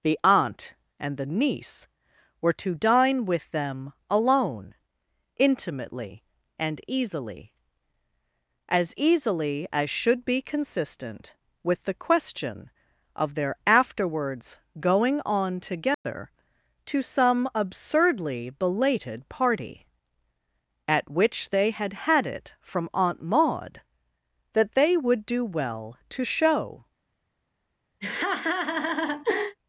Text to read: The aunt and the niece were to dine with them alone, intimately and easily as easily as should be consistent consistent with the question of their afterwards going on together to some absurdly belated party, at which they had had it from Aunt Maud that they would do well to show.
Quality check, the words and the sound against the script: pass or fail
fail